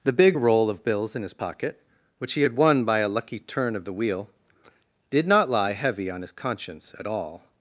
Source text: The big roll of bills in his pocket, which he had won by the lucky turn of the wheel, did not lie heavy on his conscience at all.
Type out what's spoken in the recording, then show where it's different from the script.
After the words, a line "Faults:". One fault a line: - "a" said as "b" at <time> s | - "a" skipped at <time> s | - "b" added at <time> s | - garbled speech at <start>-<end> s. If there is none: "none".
The big roll of bills in his pocket, which he had won by a lucky turn of the wheel, did not lie heavy on his conscience at all.
Faults:
- "the" said as "a" at 3.0 s